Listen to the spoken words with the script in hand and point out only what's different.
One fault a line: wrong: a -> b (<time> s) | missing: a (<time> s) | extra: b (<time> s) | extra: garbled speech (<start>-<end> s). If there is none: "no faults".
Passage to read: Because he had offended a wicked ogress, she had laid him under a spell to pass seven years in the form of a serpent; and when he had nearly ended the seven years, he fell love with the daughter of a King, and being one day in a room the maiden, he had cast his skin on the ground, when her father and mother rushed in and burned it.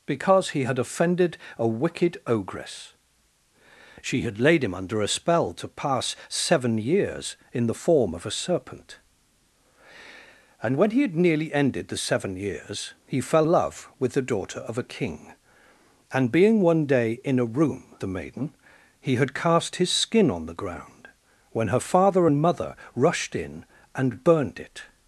no faults